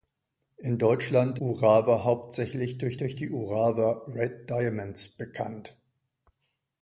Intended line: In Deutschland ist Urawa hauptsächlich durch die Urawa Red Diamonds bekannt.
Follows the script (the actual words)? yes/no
no